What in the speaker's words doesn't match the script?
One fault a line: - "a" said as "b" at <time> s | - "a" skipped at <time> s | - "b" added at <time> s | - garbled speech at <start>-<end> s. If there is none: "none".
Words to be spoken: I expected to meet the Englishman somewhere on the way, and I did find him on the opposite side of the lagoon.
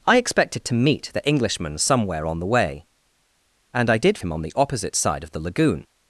- "find" skipped at 4.2 s